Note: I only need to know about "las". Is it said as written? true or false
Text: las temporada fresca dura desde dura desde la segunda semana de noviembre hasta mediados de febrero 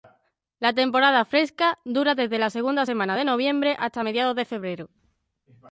false